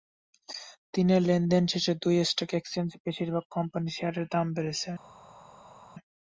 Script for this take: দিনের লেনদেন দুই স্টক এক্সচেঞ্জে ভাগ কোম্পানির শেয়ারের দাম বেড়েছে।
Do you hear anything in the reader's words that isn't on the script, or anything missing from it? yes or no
yes